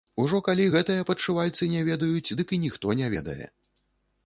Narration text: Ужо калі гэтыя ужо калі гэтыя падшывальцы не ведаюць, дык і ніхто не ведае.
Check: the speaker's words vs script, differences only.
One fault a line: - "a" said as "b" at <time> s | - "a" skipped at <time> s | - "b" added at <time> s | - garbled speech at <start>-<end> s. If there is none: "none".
- "ужо калі гэтыя" skipped at 1.1 s